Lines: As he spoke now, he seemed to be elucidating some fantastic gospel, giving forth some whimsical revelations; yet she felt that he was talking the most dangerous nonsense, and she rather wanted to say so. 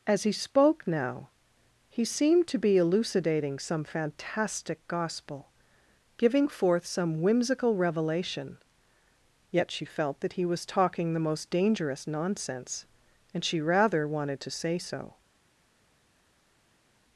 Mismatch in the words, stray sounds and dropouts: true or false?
true